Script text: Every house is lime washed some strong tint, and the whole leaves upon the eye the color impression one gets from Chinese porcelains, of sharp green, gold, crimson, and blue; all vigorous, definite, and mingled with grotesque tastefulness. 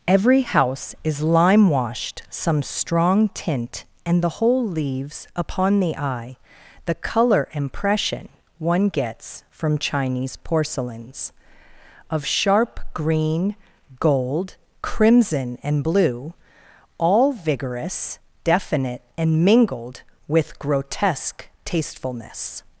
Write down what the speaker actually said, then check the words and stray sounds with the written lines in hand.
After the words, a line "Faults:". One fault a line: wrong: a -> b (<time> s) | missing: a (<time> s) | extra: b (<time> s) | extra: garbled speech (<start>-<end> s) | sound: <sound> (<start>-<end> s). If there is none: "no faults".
Every house is lime washed some strong tint, and the whole leaves upon the eye the color impression one gets from Chinese porcelains, of sharp green, gold, crimson, and blue; all vigorous, definite, and mingled with grotesque tastefulness.
Faults:
no faults